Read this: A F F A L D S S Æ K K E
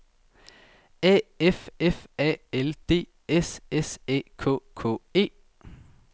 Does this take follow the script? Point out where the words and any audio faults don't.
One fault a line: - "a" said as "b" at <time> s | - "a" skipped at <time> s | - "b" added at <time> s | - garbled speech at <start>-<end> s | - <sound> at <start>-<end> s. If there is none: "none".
none